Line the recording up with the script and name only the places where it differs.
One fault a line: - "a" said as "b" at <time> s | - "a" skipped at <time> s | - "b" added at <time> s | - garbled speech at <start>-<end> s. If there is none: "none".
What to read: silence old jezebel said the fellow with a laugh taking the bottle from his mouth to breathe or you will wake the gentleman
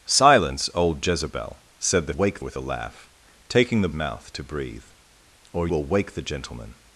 - "fellow" said as "wake" at 2.1 s
- "bottle from his" skipped at 3.9 s
- "you" skipped at 5.7 s